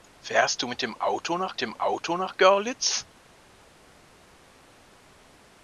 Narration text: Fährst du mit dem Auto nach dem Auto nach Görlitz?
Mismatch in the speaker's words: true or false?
false